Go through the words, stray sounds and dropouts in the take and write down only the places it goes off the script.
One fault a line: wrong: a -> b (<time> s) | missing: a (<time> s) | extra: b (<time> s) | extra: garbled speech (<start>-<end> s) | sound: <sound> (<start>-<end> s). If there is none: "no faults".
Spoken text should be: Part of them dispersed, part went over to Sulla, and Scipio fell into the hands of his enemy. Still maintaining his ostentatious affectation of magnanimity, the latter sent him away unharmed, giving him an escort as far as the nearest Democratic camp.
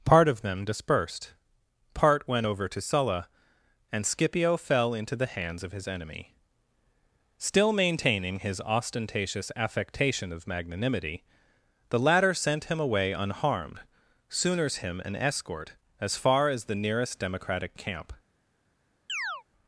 wrong: giving -> sooners (14.3 s)
sound: chirp (19.1-19.4 s)